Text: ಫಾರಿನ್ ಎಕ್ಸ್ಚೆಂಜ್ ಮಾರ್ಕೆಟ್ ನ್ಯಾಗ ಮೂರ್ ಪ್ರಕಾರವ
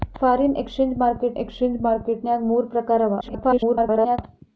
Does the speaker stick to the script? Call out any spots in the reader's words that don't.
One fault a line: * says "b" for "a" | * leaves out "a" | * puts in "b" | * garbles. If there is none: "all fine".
* puts in "ಎಕ್ಸ್ಚೆಂಜ್ ಮಾರ್ಕೆಟ್"
* garbles